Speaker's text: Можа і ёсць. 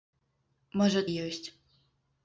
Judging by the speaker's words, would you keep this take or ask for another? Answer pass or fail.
pass